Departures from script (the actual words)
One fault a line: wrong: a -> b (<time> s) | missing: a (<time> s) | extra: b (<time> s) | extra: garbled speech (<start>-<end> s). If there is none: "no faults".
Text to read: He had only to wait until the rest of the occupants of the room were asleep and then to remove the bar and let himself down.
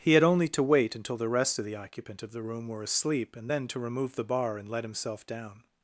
wrong: occupants -> occupant (1.8 s)